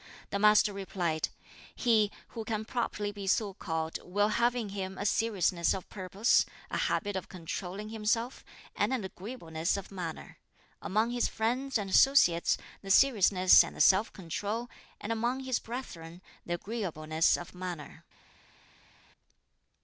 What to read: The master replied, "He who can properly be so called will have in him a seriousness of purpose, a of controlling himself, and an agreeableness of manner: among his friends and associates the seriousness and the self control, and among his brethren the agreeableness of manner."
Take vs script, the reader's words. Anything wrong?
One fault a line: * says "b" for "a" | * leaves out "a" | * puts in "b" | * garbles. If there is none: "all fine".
* puts in "habit"